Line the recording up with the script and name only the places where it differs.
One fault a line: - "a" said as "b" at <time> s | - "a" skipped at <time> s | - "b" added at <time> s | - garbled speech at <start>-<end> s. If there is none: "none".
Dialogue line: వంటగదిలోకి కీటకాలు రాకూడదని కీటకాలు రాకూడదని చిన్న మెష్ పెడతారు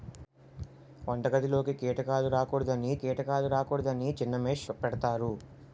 none